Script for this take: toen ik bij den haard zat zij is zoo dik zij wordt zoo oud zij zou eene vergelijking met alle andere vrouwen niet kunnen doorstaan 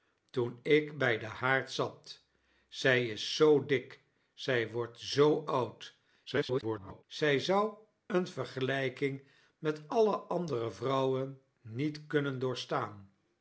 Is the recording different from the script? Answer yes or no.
yes